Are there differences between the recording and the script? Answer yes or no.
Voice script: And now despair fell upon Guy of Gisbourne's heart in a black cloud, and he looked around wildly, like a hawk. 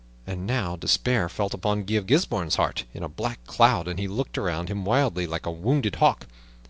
yes